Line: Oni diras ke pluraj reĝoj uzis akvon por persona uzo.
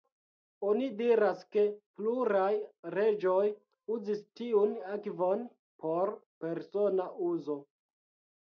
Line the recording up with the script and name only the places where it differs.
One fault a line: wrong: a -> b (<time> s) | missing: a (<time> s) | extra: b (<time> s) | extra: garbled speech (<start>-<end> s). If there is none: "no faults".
extra: tiun (4.4 s)